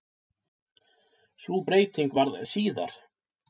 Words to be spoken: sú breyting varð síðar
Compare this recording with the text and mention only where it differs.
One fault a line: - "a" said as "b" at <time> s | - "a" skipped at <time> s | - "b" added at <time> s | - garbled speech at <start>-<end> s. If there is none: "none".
none